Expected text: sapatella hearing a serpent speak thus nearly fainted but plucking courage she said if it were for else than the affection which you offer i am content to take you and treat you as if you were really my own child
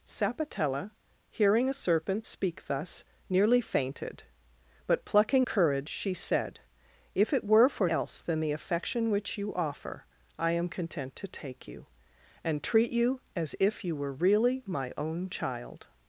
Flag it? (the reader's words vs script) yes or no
no